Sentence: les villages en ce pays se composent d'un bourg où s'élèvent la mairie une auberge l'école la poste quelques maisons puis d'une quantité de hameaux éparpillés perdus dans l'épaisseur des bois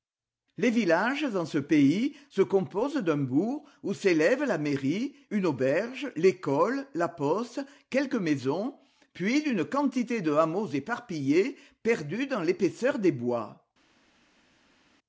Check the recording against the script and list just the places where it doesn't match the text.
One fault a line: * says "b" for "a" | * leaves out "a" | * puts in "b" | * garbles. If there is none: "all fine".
all fine